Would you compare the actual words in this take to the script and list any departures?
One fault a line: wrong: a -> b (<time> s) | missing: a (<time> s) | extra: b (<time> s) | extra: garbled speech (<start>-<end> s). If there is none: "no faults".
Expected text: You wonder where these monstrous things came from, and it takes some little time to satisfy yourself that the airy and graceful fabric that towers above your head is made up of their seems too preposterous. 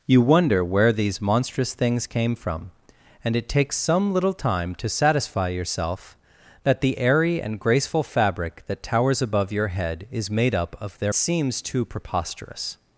no faults